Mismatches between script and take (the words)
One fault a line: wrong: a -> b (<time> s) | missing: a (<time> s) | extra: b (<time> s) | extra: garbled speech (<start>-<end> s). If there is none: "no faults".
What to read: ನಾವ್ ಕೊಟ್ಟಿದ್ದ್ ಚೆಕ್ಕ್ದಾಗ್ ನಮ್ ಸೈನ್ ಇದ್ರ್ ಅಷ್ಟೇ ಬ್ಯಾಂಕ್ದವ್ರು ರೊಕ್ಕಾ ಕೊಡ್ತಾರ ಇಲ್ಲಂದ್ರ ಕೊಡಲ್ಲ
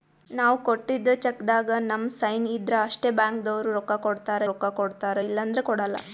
extra: ರೊಕ್ಕಾ ಕೊಡ್ತಾರ (4.5 s)